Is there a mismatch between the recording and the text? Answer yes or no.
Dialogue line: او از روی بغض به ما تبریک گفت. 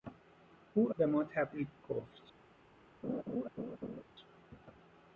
yes